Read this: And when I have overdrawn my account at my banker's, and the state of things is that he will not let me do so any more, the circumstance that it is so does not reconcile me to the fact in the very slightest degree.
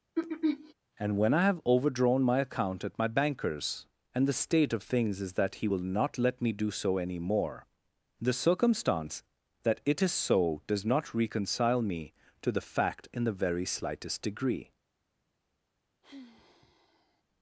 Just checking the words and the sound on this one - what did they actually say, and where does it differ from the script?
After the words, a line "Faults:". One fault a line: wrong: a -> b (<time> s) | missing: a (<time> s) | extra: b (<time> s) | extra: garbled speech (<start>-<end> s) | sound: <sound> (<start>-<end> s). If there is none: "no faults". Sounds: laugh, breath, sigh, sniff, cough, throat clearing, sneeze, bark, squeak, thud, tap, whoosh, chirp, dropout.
And when I have overdrawn my account at my banker's, and the state of things is that he will not let me do so any more, the circumstance that it is so does not reconcile me to the fact in the very slightest degree.
Faults:
sound: throat clearing (0.1-0.7 s)
sound: sigh (16.0-17.2 s)